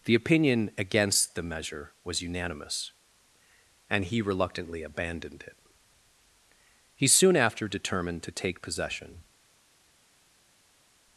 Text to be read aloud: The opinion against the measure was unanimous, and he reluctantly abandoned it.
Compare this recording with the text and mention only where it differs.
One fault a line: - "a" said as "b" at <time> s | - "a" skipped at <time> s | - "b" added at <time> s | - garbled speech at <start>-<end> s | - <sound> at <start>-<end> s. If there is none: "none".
- "He soon after determined to take possession" added at 7.0 s